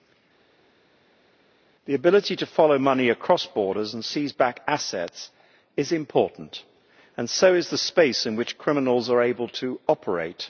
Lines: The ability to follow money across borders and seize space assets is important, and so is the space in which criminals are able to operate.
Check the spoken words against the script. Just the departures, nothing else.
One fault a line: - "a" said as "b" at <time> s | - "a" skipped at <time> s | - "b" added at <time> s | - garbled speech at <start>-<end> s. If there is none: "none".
- "space" said as "back" at 4.3 s